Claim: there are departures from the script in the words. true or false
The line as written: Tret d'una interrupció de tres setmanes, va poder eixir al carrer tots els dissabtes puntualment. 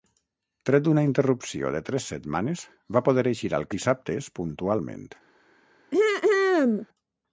true